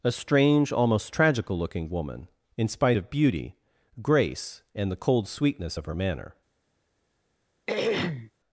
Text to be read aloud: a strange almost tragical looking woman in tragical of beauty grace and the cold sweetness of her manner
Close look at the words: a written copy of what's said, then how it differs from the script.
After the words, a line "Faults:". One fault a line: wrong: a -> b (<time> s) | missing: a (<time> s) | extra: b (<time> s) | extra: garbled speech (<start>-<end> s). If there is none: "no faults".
a strange almost tragical looking woman in spite of beauty grace and the cold sweetness of her manner
Faults:
wrong: tragical -> spite (2.7 s)